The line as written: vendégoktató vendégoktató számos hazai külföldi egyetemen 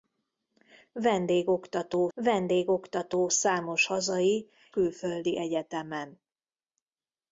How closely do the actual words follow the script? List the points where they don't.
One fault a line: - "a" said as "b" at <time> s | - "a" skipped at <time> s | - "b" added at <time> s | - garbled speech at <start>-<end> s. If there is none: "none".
none